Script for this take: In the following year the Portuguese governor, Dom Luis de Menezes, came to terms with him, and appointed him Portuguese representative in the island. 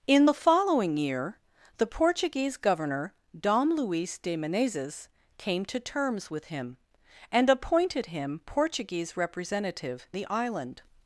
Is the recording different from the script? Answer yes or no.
yes